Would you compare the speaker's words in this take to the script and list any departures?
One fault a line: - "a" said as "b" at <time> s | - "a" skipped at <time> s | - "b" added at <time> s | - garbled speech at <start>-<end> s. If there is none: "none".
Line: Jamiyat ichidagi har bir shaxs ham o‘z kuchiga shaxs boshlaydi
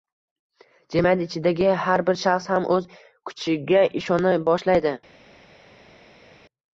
- "shaxs" said as "ishona" at 4.0 s